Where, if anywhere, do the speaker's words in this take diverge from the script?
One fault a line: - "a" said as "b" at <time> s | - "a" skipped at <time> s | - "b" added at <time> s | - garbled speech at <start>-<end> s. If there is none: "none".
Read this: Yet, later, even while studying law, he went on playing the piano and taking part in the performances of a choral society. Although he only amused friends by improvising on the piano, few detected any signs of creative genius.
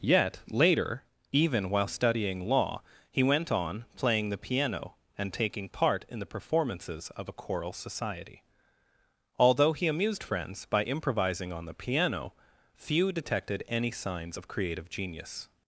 - "only" skipped at 9.8 s